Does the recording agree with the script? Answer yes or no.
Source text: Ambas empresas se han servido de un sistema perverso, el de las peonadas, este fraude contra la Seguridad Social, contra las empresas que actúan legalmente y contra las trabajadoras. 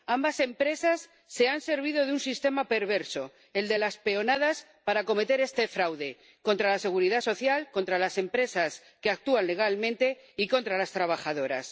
no